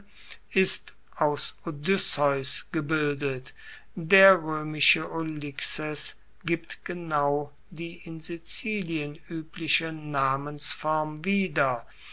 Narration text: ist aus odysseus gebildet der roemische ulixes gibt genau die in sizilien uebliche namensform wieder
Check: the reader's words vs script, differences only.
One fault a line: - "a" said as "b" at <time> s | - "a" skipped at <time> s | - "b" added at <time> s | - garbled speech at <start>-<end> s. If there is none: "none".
none